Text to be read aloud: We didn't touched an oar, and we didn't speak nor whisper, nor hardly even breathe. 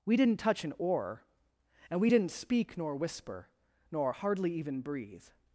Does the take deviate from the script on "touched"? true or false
true